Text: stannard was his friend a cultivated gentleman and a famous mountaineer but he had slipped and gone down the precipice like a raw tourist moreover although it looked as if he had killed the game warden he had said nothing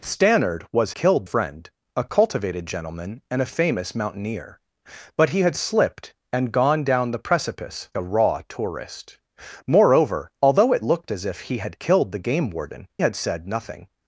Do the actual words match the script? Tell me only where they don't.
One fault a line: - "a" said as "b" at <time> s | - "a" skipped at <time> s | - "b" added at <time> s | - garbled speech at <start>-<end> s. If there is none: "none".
- "his" said as "killed" at 1.0 s
- "like" skipped at 7.9 s
- "he" skipped at 12.9 s